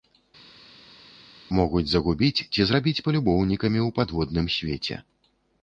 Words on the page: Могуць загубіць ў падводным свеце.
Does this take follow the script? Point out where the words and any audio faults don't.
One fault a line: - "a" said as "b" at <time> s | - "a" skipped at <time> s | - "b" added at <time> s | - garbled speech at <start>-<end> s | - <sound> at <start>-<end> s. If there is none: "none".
- "ці зрабіць палюбоўнікамі" added at 2.5 s